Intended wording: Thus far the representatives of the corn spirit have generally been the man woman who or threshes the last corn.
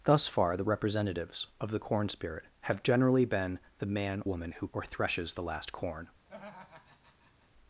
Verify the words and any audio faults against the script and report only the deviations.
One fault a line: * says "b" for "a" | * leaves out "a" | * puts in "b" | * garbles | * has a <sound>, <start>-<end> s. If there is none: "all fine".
* has a laugh, 6.3-7.5 s